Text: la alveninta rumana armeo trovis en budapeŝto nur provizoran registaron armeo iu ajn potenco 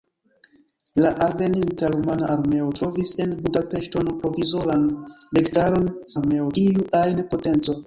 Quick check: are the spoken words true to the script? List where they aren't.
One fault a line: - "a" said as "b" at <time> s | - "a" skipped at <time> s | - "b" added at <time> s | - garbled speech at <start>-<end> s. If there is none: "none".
none